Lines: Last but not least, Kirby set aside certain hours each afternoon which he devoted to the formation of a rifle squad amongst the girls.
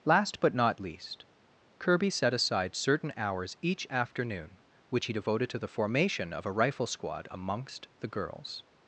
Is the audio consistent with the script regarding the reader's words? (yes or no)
yes